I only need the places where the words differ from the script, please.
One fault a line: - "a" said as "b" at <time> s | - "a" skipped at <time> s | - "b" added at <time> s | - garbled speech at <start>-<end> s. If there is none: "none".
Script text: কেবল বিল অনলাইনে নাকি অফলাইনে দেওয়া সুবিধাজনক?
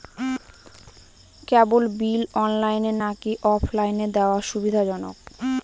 none